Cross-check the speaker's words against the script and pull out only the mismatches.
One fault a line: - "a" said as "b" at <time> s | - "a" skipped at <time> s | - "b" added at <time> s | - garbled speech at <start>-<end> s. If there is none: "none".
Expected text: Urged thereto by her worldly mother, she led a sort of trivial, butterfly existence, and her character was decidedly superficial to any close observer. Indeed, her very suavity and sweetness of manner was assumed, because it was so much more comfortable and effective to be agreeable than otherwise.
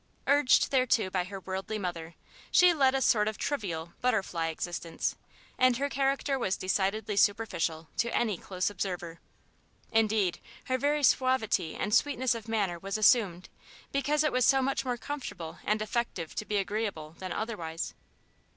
none